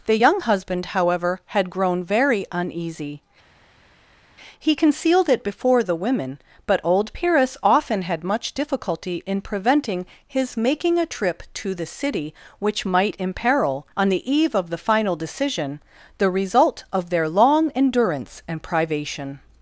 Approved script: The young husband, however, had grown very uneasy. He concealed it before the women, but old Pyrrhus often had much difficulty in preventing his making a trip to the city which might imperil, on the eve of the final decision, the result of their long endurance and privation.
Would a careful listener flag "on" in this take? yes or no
no